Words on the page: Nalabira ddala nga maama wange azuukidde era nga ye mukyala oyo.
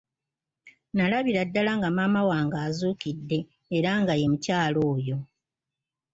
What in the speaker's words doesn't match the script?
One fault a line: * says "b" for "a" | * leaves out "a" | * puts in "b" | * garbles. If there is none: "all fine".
all fine